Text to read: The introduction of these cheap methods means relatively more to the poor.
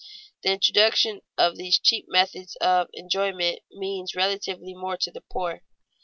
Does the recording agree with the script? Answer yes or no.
no